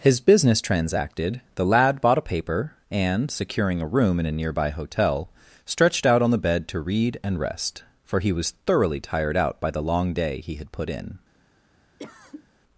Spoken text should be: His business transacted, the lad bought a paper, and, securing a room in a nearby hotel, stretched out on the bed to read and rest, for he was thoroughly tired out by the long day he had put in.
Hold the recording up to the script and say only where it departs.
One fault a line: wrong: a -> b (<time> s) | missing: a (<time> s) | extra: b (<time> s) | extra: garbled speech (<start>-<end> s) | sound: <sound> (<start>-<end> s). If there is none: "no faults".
sound: cough (12.0-12.5 s)